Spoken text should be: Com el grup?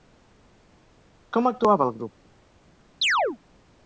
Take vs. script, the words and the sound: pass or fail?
fail